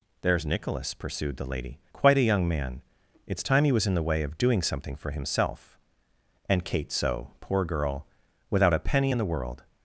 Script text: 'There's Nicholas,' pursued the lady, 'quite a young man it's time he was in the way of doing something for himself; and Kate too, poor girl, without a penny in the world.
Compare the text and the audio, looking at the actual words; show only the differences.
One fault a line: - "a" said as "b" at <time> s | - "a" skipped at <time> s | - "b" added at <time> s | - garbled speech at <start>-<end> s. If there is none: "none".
- "too" said as "so" at 6.9 s